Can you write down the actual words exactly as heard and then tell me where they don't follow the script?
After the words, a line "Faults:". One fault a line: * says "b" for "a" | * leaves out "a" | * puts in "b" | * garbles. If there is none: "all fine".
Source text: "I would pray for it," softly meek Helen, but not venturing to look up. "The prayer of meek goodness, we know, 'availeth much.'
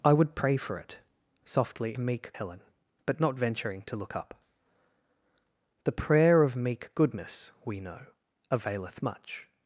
"I would pray for it," softly meek Helen, but not venturing to look up. "The prayer of meek goodness, we know, 'availeth much.'
Faults:
all fine